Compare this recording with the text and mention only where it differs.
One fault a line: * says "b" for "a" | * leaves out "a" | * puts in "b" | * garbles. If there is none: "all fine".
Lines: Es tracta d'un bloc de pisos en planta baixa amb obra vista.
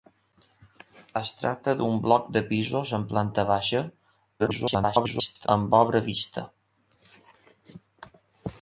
* garbles